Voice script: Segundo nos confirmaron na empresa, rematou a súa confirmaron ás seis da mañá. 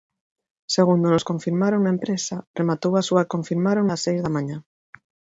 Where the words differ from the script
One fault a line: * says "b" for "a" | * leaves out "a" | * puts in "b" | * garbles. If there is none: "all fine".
all fine